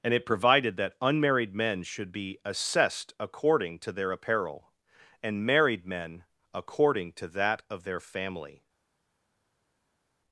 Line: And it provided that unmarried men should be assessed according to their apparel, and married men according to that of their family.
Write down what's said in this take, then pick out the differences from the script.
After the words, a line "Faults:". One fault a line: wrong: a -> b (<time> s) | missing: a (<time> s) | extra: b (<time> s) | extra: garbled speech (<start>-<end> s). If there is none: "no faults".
And it provided that unmarried men should be assessed according to their apparel, and married men according to that of their family.
Faults:
no faults